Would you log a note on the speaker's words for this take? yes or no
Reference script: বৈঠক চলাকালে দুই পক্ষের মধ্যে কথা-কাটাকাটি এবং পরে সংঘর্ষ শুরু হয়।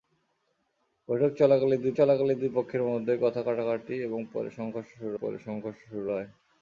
yes